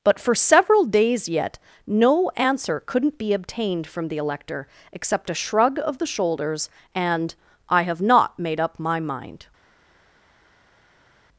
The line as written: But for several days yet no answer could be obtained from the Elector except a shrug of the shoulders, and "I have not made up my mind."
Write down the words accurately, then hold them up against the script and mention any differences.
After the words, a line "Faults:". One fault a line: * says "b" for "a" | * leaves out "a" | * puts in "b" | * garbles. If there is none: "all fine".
But for several days yet no answer couldn't be obtained from the Elector except a shrug of the shoulders, and "I have not made up my mind."
Faults:
* says "couldn't" for "could"